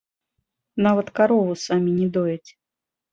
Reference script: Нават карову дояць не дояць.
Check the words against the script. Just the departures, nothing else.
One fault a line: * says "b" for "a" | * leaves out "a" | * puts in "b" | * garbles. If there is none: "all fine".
* says "самі" for "дояць"